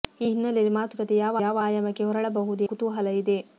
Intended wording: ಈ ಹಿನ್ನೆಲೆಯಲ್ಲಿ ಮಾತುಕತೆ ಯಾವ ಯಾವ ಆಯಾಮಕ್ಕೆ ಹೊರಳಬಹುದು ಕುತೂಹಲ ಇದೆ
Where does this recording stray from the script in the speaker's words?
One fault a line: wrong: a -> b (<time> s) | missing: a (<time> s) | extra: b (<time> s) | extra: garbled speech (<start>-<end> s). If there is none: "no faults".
no faults